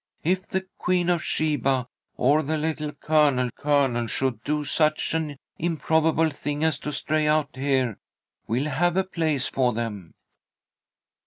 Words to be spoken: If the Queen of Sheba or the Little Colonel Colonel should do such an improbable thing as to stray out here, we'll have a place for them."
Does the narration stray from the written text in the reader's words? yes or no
no